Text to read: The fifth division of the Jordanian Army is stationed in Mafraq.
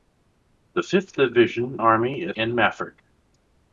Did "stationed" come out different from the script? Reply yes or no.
yes